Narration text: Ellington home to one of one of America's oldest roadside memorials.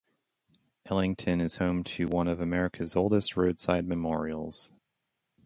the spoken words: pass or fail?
fail